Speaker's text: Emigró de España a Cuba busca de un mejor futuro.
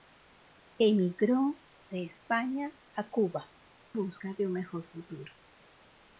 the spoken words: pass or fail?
pass